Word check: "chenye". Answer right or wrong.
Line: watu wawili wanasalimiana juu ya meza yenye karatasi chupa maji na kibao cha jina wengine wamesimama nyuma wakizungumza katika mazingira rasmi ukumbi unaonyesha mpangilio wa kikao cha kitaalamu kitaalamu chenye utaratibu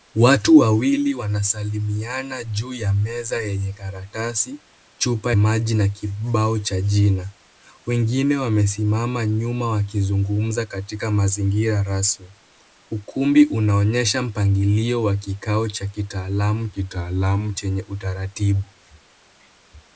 right